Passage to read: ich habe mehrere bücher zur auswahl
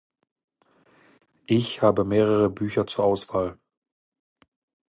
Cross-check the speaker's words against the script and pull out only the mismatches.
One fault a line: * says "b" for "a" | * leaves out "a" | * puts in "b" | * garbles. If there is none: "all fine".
all fine